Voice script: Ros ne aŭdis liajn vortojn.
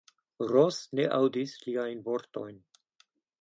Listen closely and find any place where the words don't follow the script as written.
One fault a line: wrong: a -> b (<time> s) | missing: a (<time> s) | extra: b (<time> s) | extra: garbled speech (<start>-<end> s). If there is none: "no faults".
no faults